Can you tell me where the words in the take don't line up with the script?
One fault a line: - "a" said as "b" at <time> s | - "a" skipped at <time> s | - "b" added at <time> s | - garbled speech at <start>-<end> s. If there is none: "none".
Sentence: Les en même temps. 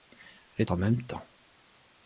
none